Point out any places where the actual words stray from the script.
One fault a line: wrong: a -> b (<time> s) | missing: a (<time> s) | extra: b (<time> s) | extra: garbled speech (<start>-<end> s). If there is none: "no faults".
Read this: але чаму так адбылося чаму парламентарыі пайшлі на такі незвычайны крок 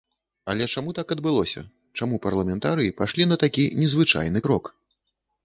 no faults